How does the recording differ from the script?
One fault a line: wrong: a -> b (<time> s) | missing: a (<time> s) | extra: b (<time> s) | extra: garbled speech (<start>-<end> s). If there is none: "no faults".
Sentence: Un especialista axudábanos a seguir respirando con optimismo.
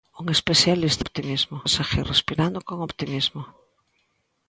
wrong: axudábanos -> optimismo (1.0 s)